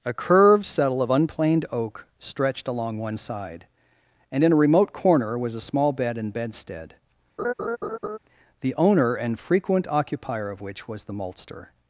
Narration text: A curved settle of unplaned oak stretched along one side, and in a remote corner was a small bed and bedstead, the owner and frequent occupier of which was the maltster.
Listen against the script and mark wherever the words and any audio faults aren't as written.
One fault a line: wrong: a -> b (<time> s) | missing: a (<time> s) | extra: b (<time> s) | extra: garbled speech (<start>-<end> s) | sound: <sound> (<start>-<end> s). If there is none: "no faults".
sound: laugh (7.4-8.2 s)